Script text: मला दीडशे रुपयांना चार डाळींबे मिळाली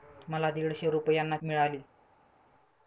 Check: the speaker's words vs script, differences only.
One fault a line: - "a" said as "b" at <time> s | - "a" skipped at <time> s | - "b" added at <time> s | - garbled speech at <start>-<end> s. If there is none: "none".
- "चार डाळींबे" skipped at 1.4 s